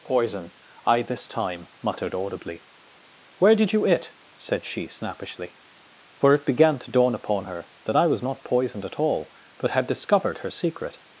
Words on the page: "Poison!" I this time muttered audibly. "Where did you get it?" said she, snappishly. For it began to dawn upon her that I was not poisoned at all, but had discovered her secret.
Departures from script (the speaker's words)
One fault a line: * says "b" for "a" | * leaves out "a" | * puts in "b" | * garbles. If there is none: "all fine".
* leaves out "get"